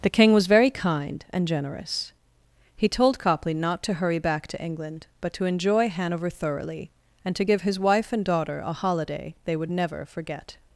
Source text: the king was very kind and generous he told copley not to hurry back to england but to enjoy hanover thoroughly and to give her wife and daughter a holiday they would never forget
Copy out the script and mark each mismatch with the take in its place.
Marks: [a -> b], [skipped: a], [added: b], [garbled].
the king was very kind and generous he told copley not to hurry back to england but to enjoy hanover thoroughly and to give [her -> his] wife and daughter a holiday they would never forget